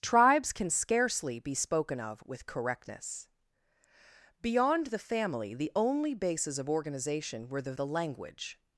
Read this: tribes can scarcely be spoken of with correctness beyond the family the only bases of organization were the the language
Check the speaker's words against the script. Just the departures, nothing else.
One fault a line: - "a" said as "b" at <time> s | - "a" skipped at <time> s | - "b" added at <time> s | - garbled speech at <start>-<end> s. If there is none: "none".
none